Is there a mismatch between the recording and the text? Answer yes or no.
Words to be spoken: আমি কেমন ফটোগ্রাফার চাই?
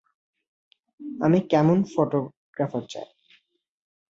no